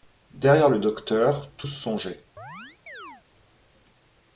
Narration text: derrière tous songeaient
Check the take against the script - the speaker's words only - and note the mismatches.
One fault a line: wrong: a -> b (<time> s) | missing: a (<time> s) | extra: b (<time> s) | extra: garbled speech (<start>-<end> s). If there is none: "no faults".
extra: le docteur (0.7 s)